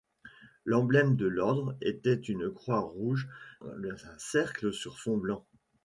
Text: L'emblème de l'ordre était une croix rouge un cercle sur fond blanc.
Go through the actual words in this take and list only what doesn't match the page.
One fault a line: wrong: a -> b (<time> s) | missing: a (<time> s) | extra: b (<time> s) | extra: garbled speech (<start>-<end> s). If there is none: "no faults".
no faults